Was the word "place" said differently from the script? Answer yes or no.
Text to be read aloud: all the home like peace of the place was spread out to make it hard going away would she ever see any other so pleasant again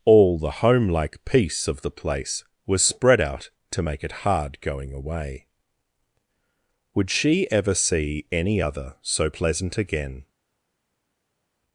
no